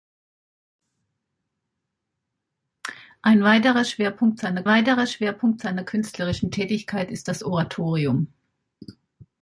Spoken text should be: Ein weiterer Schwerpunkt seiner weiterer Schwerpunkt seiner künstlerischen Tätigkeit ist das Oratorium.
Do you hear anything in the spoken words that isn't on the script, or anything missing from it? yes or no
no